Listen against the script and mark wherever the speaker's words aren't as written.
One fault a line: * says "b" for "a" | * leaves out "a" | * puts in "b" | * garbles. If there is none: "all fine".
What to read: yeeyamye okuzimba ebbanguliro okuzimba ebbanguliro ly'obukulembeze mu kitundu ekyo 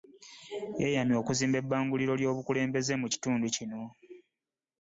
* leaves out "okuzimba ebbanguliro"
* says "kino" for "ekyo"